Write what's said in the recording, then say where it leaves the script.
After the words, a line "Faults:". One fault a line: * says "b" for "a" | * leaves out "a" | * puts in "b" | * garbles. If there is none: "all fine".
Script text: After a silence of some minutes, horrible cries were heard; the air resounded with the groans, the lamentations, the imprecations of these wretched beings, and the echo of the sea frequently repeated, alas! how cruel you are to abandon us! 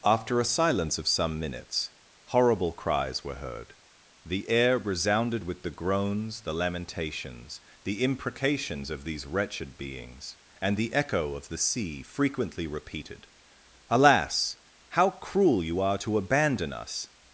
After a silence of some minutes, horrible cries were heard; the air resounded with the groans, the lamentations, the imprecations of these wretched beings, and the echo of the sea frequently repeated, alas! how cruel you are to abandon us!
Faults:
all fine